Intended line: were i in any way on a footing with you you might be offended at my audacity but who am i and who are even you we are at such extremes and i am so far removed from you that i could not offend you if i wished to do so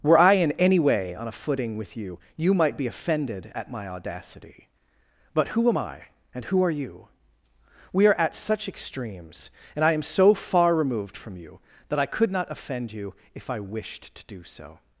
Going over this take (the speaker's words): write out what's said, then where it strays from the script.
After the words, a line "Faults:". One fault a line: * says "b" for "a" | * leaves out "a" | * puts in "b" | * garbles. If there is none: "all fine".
were i in any way on a footing with you you might be offended at my audacity but who am i and who are you we are at such extremes and i am so far removed from you that i could not offend you if i wished to do so
Faults:
* leaves out "even"